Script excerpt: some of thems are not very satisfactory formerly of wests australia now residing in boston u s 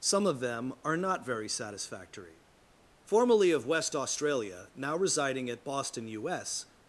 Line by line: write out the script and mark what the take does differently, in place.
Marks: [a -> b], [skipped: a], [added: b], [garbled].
some of [thems -> them] are not very satisfactory formerly of [wests -> west] australia now residing [in -> at] boston u s